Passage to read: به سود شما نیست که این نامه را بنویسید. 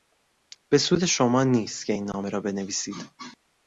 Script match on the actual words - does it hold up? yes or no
yes